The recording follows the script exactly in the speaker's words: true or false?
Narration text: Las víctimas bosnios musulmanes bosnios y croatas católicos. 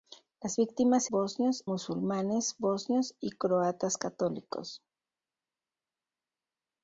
true